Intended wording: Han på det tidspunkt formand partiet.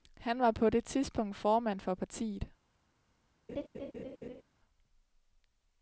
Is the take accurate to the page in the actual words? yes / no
no